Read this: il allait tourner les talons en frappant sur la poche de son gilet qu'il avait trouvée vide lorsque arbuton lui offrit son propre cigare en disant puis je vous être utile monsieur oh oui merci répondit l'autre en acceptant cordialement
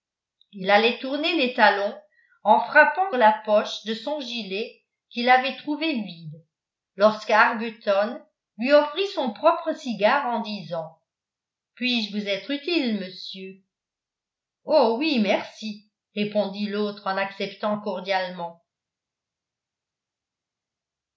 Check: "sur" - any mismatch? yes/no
yes